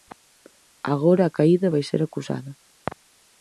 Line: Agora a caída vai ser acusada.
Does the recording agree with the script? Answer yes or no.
yes